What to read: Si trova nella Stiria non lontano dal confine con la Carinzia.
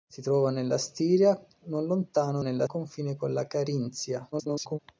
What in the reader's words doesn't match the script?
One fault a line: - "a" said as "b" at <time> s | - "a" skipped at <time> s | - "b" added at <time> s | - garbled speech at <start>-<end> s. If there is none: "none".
- "dal" said as "nella" at 2.4 s
- garbled speech at 4.3-4.8 s